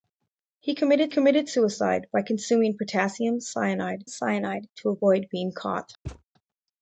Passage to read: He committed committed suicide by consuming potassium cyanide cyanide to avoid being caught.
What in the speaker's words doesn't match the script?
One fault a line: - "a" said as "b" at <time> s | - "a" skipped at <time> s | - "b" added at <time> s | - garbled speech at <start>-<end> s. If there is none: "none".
none